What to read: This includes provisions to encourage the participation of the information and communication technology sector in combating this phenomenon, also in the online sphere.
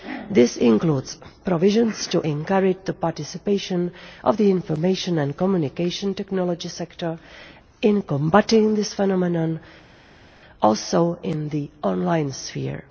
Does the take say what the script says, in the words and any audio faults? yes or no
yes